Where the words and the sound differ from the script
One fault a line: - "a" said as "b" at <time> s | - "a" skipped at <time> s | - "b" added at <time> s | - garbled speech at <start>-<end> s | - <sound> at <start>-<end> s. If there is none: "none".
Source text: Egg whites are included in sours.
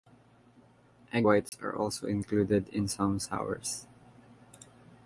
- dropout at 1.5-1.5 s
- "also" added at 1.7 s
- "some" added at 2.9 s